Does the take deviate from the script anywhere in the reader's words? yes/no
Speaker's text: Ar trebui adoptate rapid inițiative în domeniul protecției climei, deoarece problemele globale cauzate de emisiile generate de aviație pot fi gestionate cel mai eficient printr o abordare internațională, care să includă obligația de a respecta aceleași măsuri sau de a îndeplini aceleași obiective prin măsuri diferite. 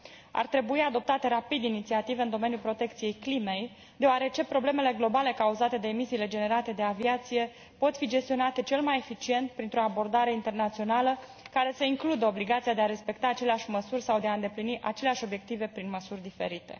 no